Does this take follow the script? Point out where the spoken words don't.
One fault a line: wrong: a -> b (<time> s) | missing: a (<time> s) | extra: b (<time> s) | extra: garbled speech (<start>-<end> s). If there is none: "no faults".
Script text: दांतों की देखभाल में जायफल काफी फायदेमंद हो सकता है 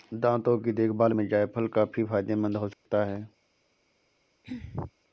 no faults